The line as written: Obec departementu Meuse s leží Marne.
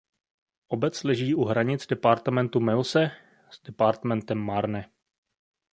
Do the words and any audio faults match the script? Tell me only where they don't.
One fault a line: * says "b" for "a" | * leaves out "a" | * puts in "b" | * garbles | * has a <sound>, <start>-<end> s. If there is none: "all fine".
* puts in "leží u hranic"
* says "departementem" for "leží"